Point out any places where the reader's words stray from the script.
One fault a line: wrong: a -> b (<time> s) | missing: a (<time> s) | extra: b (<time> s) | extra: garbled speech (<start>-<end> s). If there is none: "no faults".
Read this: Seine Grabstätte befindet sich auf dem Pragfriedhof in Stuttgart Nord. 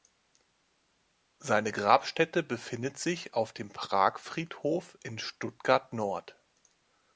no faults